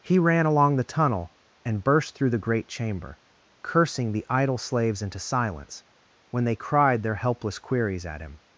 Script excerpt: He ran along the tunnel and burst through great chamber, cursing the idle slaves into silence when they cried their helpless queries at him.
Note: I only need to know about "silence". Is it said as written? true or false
true